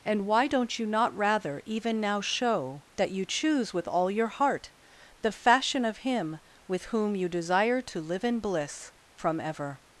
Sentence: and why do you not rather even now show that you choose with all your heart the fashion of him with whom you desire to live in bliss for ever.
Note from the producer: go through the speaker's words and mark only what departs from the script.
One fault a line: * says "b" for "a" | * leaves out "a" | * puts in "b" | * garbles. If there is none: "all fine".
* says "don't" for "do"
* says "from" for "for"